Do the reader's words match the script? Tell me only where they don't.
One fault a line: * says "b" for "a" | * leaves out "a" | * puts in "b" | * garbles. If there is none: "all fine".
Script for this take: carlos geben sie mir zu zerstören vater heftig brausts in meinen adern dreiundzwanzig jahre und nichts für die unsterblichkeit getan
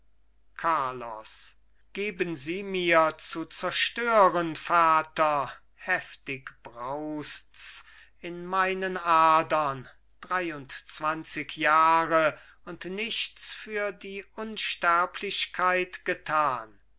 all fine